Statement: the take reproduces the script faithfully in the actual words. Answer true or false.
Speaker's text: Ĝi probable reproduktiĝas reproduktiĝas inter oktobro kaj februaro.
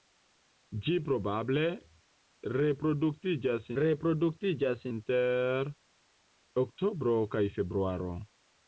true